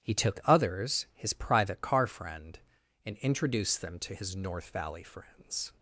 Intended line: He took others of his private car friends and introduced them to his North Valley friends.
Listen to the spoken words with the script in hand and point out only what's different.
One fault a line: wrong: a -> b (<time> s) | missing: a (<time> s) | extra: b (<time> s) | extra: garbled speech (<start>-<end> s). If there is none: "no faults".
missing: of (1.1 s)
wrong: friends -> friend (2.1 s)